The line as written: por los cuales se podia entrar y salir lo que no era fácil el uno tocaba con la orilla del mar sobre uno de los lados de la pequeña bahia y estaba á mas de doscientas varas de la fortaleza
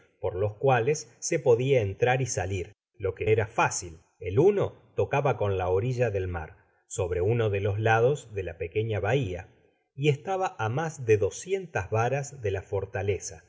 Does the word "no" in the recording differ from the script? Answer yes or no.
yes